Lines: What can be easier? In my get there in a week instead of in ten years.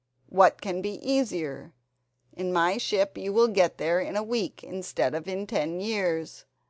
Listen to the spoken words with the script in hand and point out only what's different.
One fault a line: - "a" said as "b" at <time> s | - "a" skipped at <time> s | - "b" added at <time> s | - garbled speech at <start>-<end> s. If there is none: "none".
- "ship you will" added at 2.8 s